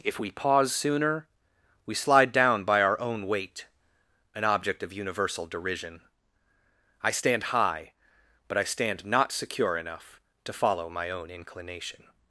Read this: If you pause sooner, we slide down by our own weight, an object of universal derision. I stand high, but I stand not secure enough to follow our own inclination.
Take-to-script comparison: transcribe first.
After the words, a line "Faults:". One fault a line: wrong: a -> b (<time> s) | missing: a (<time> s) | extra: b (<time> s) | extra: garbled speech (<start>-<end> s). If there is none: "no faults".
If we pause sooner, we slide down by our own weight, an object of universal derision. I stand high, but I stand not secure enough to follow my own inclination.
Faults:
wrong: you -> we (0.2 s)
wrong: our -> my (10.9 s)